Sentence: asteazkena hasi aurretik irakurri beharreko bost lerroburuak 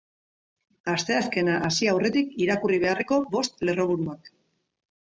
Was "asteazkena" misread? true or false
false